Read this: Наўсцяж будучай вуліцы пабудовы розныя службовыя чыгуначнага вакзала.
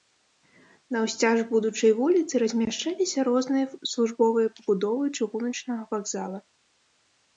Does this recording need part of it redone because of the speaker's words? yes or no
yes